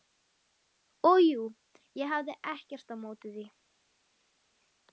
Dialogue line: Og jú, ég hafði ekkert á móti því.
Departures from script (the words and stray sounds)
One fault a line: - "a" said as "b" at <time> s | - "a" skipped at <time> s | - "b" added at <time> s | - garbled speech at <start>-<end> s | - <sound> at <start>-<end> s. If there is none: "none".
none